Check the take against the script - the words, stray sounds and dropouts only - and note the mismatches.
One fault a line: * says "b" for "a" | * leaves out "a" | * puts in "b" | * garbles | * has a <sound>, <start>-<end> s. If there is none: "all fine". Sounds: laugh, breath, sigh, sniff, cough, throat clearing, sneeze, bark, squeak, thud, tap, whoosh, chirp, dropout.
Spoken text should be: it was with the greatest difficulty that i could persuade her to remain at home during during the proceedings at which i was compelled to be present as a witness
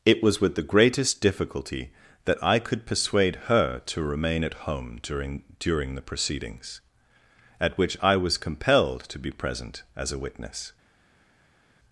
all fine